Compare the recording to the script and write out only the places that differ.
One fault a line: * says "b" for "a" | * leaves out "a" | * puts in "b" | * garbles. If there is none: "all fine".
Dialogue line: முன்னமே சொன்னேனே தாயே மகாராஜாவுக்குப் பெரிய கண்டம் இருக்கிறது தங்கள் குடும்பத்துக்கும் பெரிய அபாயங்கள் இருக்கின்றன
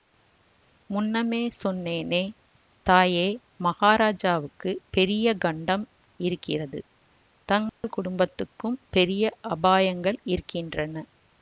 all fine